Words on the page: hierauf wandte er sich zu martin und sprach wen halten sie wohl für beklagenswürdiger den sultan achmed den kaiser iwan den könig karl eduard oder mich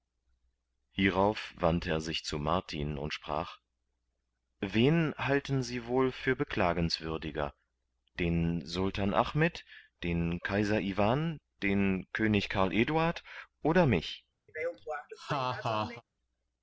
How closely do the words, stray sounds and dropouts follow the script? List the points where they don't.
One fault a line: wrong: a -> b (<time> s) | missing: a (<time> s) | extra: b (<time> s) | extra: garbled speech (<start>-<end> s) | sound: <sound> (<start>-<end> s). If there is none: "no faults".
sound: laugh (14.5-16.0 s)